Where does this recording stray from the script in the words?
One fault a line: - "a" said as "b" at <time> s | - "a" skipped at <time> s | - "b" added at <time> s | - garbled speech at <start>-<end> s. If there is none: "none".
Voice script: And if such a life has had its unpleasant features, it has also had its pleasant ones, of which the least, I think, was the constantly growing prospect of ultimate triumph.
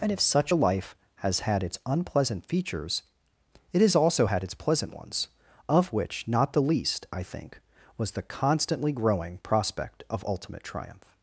- "not" added at 6.3 s